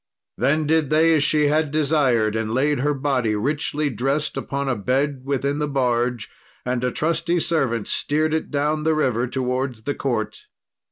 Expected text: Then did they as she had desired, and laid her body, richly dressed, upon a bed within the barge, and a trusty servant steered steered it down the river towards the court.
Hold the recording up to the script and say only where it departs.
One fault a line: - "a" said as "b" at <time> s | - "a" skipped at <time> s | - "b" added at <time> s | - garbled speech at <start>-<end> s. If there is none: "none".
- "steered" skipped at 8.3 s